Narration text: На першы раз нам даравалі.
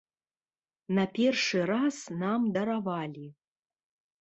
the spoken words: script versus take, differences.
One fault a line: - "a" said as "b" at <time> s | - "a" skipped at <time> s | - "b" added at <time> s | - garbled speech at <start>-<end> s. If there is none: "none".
none